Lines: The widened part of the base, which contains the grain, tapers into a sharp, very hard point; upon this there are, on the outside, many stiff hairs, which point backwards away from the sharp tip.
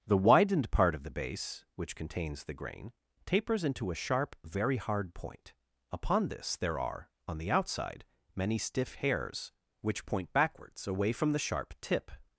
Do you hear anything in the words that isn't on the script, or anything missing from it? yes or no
no